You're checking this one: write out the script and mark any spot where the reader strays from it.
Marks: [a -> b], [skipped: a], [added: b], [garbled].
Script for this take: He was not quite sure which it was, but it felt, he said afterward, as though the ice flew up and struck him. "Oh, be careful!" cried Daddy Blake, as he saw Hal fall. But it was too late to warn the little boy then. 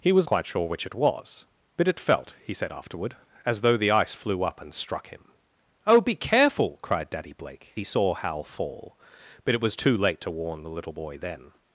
He was [skipped: not] quite sure which it was, but it felt, he said afterward, as though the ice flew up and struck him. "Oh, be careful!" cried Daddy Blake, [skipped: as] he saw Hal fall. But it was too late to warn the little boy then.